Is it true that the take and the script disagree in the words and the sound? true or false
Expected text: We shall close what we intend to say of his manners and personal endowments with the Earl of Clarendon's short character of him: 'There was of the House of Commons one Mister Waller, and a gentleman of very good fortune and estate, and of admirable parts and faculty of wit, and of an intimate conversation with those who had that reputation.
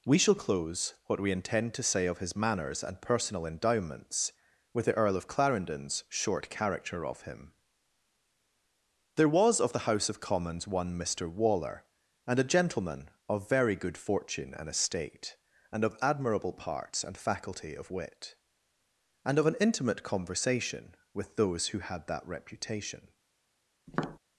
true